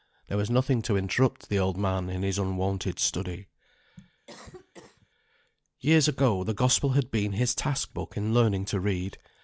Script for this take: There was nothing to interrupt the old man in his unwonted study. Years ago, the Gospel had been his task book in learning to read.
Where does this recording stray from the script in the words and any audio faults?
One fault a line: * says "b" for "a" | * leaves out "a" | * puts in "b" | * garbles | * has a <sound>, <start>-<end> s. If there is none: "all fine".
* has a cough, 4.3-5.1 s